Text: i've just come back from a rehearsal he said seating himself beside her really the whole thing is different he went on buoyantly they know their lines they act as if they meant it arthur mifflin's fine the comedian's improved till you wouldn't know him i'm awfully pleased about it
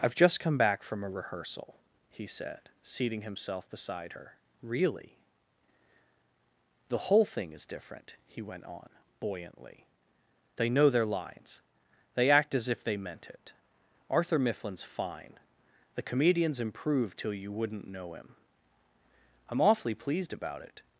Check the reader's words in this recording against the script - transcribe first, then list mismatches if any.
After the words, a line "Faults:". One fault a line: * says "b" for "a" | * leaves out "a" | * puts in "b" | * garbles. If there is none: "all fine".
i've just come back from a rehearsal he said seating himself beside her really the whole thing is different he went on buoyantly they know their lines they act as if they meant it arthur mifflin's fine the comedian's improved till you wouldn't know him i'm awfully pleased about it
Faults:
all fine